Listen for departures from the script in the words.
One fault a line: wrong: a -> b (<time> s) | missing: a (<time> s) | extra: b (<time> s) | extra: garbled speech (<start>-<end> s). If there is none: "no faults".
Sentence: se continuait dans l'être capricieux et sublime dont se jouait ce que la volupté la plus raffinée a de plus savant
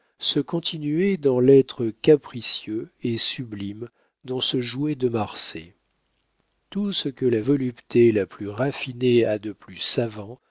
extra: de marsay tout (5.0 s)